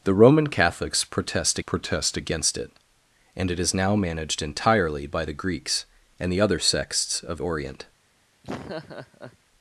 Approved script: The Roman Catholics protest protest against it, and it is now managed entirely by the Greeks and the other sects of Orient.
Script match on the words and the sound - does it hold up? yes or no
no